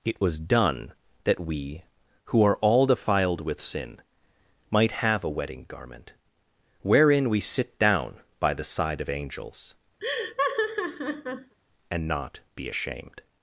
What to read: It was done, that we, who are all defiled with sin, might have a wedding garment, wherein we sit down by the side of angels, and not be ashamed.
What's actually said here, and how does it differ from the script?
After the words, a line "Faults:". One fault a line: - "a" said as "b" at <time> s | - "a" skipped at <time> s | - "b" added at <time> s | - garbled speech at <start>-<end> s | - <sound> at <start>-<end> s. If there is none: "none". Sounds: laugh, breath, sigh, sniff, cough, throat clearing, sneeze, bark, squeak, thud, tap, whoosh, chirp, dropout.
It was done, that we, who are all defiled with sin, might have a wedding garment, wherein we sit down by the side of angels, and not be ashamed.
Faults:
- laugh at 10.0-11.5 s